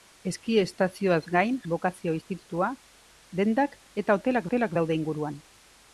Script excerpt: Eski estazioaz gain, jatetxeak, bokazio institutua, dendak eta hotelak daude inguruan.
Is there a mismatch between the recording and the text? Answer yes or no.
yes